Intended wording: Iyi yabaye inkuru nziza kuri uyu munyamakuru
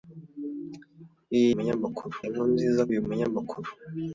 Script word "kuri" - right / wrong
wrong